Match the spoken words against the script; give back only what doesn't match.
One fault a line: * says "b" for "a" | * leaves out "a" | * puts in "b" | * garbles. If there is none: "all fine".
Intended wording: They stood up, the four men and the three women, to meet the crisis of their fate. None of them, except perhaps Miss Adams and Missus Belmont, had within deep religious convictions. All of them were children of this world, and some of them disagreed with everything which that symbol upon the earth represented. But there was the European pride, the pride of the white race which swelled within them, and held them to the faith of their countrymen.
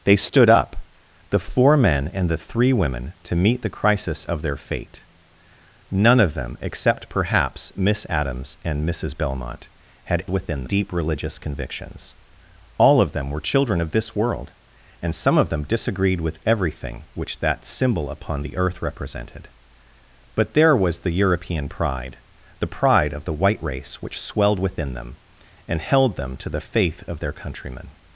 all fine